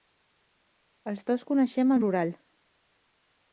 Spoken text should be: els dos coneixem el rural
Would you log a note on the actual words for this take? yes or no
no